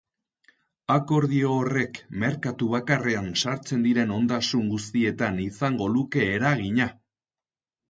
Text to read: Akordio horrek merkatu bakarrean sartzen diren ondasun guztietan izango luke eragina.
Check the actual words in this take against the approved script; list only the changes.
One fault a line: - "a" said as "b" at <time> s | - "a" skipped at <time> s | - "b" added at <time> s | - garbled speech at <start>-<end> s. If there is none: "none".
none